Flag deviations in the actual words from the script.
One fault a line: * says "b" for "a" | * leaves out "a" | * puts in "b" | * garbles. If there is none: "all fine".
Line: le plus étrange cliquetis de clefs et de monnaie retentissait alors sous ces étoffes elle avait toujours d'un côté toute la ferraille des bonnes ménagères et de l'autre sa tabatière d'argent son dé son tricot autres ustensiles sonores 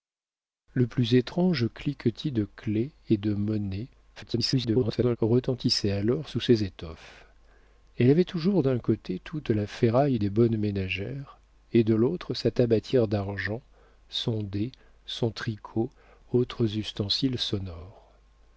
* garbles